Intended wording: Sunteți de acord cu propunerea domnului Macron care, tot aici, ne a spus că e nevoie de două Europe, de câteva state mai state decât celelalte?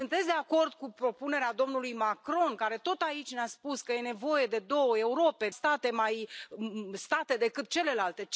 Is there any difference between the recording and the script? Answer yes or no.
yes